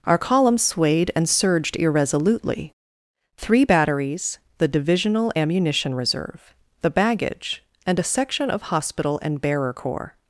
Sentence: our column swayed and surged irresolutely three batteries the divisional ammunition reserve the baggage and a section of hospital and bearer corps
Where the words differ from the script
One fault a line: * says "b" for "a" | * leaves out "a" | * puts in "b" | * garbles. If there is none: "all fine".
all fine